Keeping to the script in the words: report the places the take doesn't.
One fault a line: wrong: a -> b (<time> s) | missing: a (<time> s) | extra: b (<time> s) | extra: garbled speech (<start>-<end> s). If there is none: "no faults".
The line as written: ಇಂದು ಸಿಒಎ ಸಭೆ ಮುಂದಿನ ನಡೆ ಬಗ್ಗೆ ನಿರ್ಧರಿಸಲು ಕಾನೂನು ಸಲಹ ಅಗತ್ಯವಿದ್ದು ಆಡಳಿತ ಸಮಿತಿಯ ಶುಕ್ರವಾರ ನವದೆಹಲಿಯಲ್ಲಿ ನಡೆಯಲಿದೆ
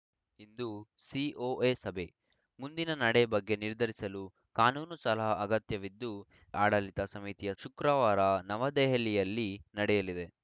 no faults